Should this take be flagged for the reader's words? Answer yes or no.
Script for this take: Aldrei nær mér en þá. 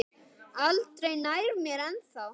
no